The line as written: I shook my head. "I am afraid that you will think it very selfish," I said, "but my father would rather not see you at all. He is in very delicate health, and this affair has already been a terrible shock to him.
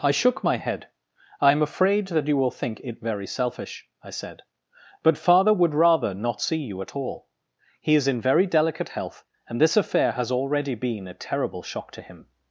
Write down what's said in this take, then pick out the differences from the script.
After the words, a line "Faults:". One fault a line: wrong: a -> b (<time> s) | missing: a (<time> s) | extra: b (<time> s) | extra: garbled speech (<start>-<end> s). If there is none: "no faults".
I shook my head. "I am afraid that you will think it very selfish," I said, "but father would rather not see you at all. He is in very delicate health, and this affair has already been a terrible shock to him.
Faults:
missing: my (5.2 s)